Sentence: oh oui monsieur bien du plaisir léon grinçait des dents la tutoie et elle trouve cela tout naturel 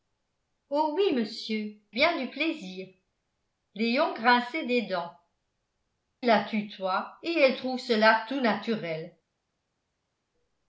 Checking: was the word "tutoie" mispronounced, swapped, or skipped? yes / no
no